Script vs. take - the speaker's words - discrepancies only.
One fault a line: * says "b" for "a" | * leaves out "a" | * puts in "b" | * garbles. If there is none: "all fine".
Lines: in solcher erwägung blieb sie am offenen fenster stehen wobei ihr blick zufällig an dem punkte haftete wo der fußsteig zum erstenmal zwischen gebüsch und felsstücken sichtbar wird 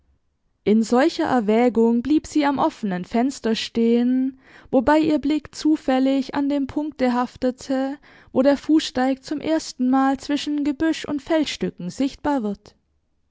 all fine